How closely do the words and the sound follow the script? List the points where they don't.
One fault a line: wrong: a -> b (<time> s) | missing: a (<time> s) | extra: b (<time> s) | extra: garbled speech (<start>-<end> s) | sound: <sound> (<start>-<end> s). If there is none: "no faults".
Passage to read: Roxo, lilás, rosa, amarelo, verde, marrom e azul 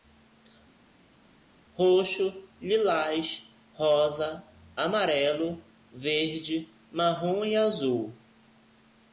no faults